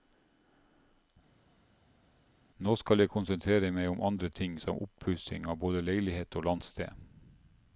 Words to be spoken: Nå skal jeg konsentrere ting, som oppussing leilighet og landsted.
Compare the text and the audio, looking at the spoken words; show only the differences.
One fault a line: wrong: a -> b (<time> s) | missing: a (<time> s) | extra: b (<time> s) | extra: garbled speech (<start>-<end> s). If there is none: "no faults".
extra: meg om andre (3.7 s)
extra: av både (5.5 s)